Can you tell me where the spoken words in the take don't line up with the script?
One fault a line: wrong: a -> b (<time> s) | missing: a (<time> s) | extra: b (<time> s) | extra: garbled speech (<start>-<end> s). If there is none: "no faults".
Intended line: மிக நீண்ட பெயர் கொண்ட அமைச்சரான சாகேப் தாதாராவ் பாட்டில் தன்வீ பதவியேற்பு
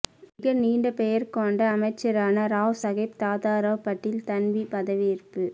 extra: ராவ் (2.5 s)